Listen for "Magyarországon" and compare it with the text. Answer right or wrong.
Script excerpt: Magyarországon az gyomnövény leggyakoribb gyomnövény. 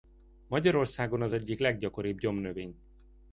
right